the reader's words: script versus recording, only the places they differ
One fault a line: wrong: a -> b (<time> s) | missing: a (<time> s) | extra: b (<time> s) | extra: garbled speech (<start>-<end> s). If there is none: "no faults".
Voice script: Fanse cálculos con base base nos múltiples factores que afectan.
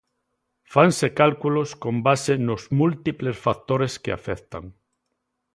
missing: base (2.3 s)